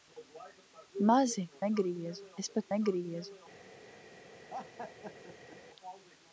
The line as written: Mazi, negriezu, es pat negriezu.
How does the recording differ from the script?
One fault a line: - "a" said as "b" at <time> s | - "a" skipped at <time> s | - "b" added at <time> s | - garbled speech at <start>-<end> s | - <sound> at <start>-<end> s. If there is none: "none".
- laugh at 4.5-5.6 s